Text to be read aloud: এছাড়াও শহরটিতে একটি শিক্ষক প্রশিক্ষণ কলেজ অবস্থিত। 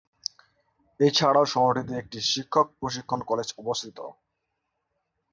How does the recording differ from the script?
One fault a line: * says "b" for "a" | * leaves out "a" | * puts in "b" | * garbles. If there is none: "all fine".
all fine